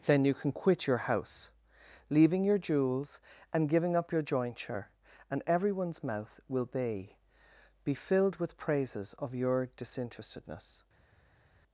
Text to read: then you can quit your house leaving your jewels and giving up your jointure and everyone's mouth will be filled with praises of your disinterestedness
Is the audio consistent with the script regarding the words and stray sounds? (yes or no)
no